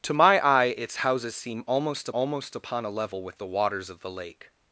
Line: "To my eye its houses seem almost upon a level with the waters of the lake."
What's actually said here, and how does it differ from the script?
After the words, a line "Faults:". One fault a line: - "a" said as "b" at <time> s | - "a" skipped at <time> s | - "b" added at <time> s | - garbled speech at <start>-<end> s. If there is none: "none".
"To my eye its houses seem almost almost upon a level with the waters of the lake."
Faults:
- "almost" added at 2.1 s